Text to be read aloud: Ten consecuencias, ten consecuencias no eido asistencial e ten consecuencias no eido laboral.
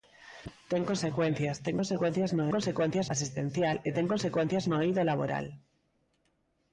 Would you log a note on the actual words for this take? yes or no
yes